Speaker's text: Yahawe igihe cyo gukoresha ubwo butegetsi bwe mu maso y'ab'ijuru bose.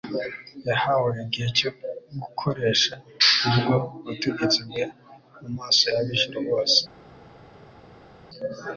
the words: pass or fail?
pass